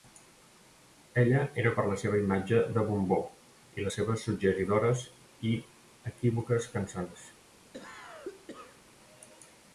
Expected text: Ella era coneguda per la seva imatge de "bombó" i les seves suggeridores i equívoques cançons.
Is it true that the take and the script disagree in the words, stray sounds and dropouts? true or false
true